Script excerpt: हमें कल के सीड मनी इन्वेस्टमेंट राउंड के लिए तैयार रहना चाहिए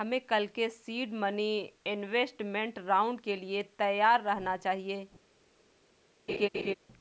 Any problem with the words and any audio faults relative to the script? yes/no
yes